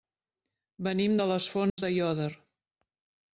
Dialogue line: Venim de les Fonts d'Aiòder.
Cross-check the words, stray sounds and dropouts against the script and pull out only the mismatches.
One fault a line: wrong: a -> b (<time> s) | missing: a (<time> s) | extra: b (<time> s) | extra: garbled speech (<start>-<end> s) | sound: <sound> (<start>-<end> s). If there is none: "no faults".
sound: dropout (1.7-1.8 s)